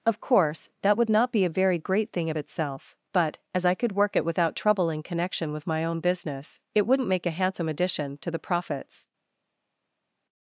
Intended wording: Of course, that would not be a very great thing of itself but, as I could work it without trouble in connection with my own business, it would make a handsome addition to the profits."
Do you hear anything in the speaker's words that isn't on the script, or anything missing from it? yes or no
yes